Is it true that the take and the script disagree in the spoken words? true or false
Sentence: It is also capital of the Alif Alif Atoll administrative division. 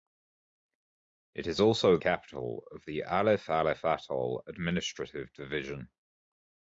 false